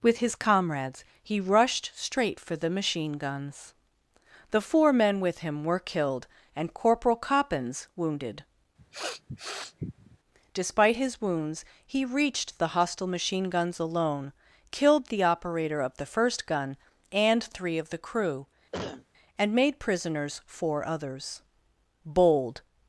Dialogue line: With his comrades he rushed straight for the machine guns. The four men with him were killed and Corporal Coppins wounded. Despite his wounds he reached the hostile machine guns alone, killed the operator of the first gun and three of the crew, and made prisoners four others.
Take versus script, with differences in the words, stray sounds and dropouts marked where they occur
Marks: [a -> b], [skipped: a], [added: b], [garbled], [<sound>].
With his comrades he rushed straight for the machine guns. The four men with him were killed and Corporal Coppins wounded. [sniff] Despite his wounds he reached the hostile machine guns alone, killed the operator of the first gun and three of the crew, [cough] and made prisoners four others. [added: Bold]